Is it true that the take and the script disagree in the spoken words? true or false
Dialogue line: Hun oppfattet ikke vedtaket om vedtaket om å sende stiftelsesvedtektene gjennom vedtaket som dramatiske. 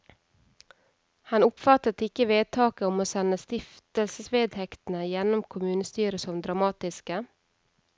true